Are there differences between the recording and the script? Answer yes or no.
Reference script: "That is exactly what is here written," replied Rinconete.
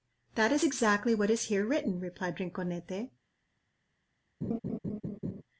no